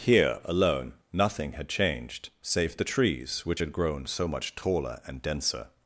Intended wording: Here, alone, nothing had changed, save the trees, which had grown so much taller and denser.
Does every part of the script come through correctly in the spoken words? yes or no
yes